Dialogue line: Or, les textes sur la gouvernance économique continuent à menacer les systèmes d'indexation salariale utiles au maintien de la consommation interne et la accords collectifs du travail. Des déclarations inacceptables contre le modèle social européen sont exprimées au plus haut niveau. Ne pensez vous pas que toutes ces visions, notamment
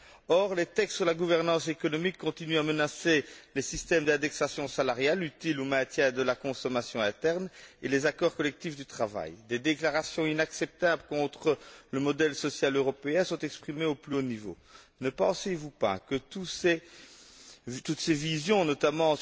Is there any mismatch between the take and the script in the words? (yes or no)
yes